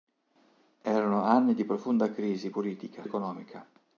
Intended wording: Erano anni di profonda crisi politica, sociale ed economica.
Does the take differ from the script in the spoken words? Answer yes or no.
yes